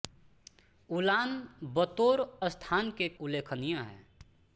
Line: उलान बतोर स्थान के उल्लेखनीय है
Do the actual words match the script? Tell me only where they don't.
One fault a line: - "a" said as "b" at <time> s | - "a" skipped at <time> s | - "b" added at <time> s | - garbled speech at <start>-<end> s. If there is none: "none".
none